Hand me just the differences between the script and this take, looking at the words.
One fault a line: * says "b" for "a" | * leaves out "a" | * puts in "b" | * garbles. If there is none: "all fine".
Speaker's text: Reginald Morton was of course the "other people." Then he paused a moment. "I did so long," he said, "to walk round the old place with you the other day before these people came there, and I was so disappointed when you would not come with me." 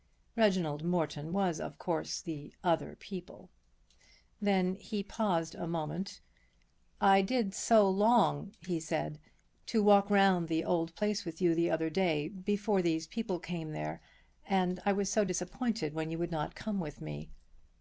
all fine